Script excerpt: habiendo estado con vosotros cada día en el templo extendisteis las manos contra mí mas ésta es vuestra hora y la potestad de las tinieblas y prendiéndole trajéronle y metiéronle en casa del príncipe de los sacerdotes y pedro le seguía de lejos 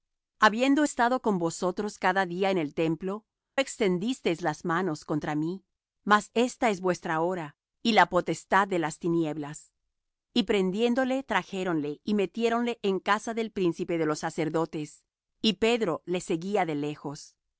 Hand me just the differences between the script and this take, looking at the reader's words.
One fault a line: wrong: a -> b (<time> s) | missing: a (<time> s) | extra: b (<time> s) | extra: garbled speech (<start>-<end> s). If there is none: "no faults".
no faults